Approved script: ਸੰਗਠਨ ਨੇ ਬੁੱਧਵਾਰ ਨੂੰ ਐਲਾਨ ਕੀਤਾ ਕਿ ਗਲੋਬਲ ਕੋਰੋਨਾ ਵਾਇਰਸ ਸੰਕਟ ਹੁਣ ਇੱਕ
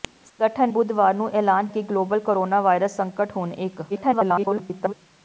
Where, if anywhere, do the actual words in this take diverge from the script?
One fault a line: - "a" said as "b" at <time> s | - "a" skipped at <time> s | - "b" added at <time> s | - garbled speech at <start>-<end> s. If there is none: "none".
- "ਨੇ" skipped at 0.7 s
- "ਕੀਤਾ" skipped at 1.7 s
- garbled speech at 3.9-4.9 s